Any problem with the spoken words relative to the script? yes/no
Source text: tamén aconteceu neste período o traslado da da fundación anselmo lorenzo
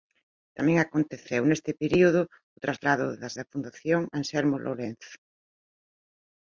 no